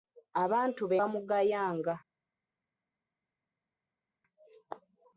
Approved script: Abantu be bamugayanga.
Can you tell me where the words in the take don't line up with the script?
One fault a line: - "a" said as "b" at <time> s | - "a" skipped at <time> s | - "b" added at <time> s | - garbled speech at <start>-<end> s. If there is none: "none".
none